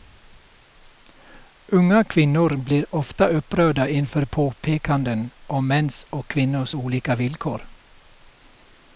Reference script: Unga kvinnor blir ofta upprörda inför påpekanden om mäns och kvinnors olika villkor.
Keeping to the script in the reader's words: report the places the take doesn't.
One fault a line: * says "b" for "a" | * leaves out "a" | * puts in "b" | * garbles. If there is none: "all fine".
all fine